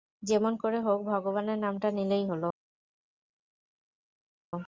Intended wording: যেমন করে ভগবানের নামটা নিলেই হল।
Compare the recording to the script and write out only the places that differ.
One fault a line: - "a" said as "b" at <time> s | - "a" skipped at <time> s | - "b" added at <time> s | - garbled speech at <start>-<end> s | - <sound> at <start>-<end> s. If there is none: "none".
- "হোক" added at 0.8 s